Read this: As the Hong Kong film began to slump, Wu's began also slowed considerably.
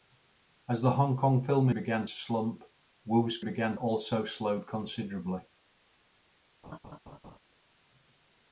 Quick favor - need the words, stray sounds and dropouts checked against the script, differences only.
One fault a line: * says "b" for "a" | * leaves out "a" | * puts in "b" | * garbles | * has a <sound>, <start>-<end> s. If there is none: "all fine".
* has a laugh, 6.6-7.4 s